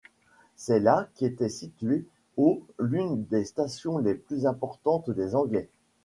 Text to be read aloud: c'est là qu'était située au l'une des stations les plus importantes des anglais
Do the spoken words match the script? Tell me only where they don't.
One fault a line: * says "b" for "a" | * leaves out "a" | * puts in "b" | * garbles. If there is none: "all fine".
all fine